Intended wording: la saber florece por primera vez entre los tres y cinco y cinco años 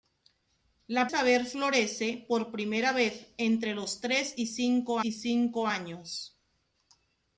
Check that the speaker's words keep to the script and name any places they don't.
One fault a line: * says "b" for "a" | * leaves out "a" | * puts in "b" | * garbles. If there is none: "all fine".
all fine